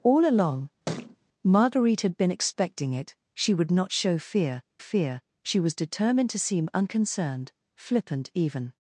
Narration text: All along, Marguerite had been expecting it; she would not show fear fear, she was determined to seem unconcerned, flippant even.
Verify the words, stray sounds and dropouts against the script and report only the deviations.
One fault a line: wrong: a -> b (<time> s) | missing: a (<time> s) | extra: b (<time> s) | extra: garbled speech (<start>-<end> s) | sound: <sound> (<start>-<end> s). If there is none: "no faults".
sound: thud (0.9-1.2 s)